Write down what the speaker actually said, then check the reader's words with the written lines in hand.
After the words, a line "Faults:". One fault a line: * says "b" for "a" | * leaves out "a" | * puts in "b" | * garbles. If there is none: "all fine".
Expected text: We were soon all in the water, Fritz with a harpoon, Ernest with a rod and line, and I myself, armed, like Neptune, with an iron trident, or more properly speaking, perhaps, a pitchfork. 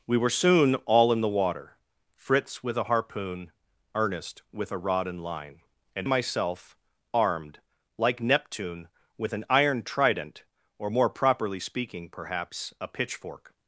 We were soon all in the water, Fritz with a harpoon, Ernest with a rod and line, and myself, armed, like Neptune, with an iron trident, or more properly speaking, perhaps, a pitchfork.
Faults:
* leaves out "I"